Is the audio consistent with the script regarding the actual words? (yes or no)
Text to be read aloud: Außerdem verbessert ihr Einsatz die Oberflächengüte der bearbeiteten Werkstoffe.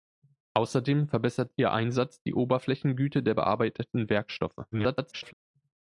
no